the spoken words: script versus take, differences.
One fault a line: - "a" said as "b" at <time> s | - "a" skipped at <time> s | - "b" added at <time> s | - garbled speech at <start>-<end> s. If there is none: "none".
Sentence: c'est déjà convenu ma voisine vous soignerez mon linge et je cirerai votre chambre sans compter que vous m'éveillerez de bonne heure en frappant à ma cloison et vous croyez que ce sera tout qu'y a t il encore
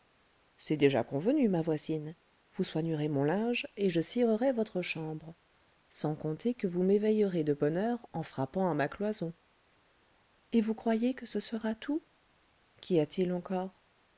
none